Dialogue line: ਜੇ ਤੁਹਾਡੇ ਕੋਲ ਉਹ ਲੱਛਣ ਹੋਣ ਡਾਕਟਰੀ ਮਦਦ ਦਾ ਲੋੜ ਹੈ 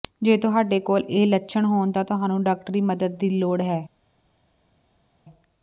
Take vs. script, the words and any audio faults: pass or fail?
fail